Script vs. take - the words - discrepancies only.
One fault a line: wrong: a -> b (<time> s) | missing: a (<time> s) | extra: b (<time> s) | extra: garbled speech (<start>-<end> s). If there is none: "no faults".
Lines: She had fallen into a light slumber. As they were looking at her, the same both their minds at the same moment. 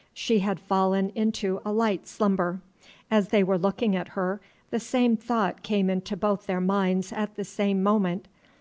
extra: thought came into (5.2 s)